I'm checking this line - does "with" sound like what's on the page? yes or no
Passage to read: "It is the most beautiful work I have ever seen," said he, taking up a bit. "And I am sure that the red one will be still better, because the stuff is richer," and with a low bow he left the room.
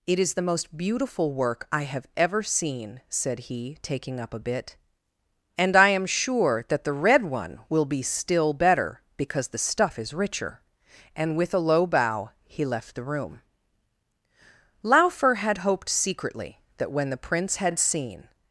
yes